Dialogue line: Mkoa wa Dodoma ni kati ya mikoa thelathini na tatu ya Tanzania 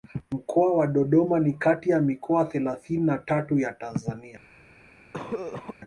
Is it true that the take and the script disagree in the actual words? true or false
false